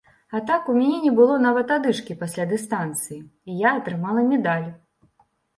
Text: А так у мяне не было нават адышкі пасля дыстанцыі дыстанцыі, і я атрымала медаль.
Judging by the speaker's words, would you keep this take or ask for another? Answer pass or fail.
fail